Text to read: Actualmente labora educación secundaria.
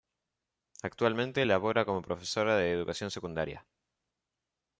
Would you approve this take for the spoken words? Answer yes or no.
no